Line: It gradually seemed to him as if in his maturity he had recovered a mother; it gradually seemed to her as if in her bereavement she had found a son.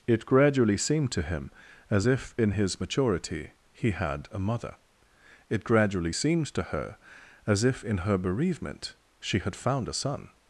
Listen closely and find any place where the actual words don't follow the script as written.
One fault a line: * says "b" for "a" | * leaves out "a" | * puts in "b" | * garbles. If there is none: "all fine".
* leaves out "recovered"